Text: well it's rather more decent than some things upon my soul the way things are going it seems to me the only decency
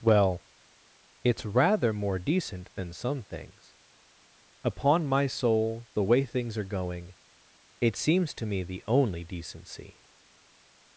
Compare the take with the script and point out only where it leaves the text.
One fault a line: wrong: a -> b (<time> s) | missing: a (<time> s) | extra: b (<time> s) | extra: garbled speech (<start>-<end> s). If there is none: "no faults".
no faults